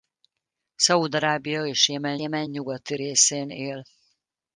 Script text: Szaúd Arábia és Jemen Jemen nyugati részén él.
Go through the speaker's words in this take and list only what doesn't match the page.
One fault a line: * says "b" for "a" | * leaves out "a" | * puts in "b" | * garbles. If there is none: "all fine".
all fine